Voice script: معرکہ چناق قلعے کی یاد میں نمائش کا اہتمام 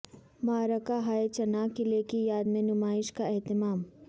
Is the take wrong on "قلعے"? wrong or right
right